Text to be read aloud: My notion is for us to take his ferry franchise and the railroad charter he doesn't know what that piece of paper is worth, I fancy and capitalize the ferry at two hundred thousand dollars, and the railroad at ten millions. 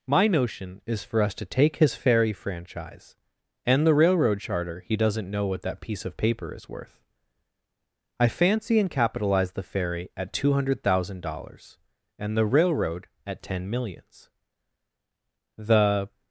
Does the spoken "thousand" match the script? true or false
true